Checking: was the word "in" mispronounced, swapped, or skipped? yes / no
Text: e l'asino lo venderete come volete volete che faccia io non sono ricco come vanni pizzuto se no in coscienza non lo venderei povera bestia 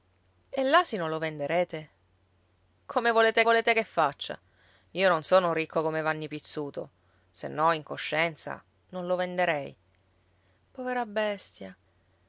no